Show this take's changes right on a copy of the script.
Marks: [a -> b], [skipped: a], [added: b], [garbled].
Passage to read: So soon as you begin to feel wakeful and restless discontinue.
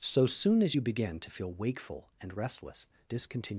So soon as you begin to feel wakeful and restless discontinue.